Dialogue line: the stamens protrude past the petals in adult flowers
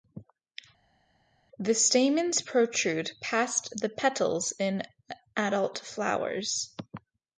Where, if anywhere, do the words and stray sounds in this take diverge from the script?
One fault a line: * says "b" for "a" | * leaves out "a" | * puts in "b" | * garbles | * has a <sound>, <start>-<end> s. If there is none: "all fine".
all fine